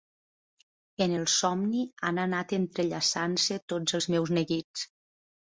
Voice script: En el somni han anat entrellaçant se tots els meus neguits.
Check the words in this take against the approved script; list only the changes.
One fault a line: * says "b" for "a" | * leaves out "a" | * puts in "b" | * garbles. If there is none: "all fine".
all fine